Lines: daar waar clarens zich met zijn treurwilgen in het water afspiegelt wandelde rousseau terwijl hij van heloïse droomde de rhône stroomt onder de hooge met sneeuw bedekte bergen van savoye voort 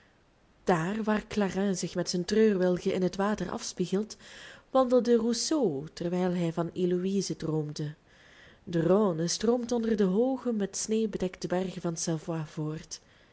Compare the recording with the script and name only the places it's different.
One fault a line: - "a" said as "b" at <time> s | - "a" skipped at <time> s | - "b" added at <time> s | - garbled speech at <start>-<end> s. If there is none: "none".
none